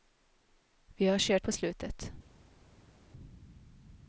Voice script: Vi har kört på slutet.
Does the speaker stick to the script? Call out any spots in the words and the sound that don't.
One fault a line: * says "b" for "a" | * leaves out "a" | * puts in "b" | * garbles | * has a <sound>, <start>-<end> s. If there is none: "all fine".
all fine